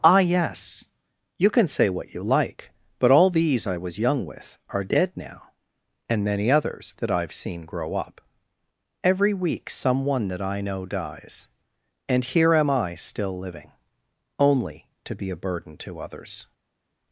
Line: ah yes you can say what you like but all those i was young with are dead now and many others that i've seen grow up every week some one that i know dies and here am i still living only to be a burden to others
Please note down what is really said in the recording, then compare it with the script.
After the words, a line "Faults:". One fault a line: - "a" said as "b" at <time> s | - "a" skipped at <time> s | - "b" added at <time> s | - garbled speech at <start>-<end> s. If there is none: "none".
ah yes you can say what you like but all these i was young with are dead now and many others that i've seen grow up every week some one that i know dies and here am i still living only to be a burden to others
Faults:
- "those" said as "these" at 3.3 s